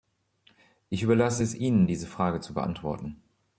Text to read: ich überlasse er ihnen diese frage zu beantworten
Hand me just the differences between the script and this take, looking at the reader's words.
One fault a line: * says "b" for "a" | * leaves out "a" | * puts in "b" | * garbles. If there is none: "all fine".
* says "es" for "er"